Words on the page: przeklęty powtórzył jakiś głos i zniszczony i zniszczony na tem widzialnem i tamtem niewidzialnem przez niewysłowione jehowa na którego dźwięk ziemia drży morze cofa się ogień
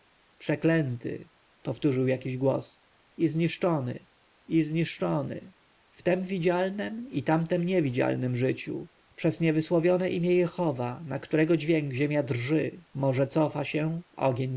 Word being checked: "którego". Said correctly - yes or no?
yes